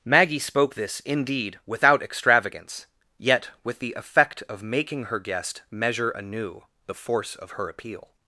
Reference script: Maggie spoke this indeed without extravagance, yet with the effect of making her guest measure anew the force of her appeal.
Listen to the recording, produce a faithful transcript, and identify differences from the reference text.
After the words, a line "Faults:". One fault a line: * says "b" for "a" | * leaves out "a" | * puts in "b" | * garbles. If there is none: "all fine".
Maggie spoke this indeed without extravagance, yet with the effect of making her guest measure anew the force of her appeal.
Faults:
all fine